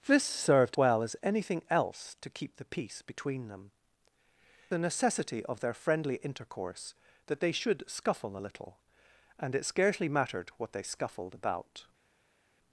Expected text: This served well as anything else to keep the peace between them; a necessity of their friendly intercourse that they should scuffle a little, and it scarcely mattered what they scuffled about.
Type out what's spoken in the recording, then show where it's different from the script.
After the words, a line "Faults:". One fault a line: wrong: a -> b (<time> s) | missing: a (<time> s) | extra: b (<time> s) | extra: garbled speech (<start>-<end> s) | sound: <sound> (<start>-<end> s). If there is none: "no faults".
This served well as anything else to keep the peace between them; a necessity of their friendly intercourse that they should scuffle a little, and it scarcely mattered what they scuffled about.
Faults:
no faults